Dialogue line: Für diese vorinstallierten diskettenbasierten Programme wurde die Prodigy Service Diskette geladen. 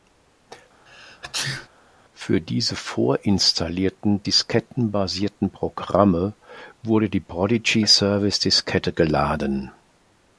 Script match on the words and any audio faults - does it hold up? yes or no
no